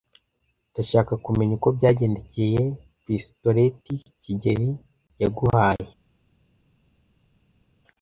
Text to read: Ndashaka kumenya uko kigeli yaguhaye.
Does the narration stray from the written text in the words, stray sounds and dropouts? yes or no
yes